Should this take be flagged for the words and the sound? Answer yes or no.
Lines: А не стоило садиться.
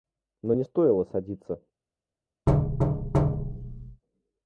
yes